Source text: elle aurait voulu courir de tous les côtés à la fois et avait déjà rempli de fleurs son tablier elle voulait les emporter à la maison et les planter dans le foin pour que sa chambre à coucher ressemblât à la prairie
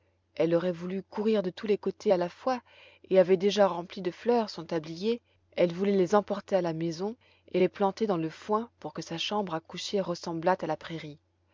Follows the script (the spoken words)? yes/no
yes